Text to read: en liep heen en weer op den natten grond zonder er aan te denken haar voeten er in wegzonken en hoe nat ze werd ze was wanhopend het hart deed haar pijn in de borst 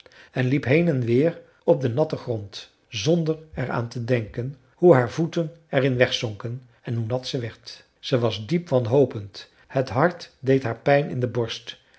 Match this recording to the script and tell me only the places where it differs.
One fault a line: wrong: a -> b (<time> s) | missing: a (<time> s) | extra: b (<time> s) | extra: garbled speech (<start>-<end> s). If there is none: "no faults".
extra: hoe (4.8 s)
extra: diep (8.5 s)